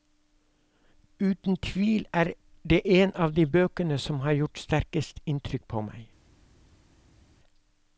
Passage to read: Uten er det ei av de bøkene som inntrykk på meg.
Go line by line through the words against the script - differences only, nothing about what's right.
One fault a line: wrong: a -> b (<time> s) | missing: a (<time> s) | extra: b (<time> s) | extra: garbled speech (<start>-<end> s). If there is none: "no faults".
extra: tvil (1.6 s)
wrong: ei -> en (2.8 s)
extra: har gjort sterkest (4.3 s)